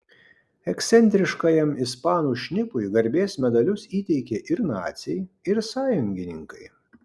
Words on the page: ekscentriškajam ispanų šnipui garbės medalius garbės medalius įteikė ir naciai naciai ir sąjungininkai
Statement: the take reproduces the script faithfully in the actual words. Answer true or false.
false